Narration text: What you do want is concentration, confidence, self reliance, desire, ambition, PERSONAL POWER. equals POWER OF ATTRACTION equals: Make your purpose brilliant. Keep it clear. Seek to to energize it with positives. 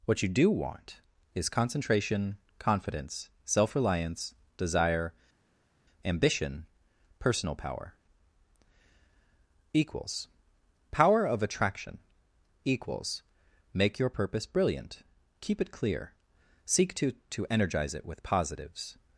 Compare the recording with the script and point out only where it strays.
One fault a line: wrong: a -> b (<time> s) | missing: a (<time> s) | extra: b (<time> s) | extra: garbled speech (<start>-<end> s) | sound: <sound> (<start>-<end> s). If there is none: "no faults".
no faults